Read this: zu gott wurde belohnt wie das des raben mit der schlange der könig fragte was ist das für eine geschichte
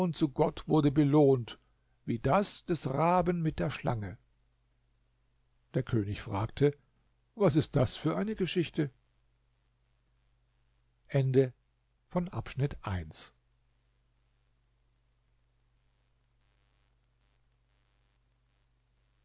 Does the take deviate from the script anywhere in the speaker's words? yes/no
no